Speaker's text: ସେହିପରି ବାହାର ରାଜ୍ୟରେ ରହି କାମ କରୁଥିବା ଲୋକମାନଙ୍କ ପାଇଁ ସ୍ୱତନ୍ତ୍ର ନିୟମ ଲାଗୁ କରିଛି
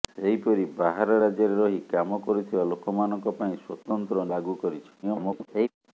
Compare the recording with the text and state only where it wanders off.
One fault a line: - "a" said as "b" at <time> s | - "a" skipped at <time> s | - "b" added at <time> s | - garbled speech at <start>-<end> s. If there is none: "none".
- "ନିୟମ" skipped at 4.3 s
- garbled speech at 5.0-5.7 s